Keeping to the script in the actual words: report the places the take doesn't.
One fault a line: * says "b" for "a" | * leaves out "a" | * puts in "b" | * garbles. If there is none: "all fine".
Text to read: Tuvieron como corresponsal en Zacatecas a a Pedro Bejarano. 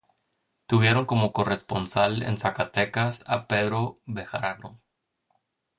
* leaves out "a"